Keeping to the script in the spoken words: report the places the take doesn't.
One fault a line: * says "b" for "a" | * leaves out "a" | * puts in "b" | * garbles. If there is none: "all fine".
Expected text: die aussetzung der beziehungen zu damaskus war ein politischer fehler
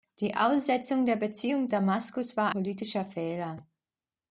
* leaves out "zu"
* leaves out "ein"